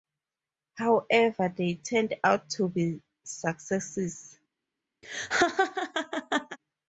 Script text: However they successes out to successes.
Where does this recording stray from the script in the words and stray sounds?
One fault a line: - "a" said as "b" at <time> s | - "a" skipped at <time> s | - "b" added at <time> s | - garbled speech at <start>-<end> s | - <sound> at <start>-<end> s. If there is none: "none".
- "successes" said as "turned" at 1.8 s
- "be" added at 2.7 s
- laugh at 5.0-6.6 s